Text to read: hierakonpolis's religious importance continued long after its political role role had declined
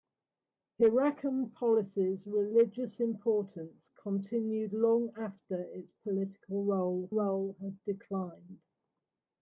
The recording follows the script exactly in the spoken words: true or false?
true